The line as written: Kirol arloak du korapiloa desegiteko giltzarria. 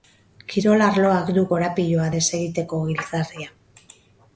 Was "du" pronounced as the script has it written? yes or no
yes